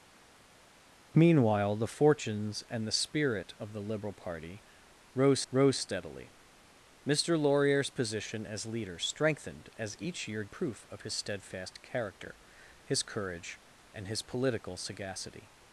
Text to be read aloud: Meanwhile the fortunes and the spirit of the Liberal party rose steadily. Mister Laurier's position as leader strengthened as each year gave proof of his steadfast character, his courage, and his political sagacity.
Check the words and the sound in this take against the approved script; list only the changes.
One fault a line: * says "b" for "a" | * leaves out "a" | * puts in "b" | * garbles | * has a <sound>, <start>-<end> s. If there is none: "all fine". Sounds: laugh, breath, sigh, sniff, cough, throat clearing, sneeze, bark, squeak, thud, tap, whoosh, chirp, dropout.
* puts in "rose"
* leaves out "gave"